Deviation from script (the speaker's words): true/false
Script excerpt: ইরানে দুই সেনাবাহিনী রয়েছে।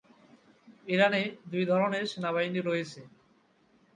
true